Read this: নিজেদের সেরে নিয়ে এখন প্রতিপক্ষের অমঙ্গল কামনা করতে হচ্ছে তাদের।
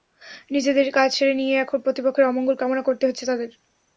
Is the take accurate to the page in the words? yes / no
no